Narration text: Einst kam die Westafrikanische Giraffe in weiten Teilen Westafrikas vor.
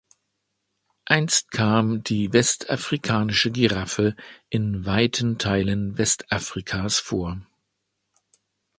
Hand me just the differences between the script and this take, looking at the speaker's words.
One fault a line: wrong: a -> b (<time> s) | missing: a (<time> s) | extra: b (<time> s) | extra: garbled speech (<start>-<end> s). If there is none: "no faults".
no faults